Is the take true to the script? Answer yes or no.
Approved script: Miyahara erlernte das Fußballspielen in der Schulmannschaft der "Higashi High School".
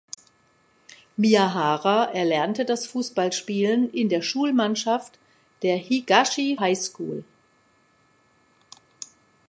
yes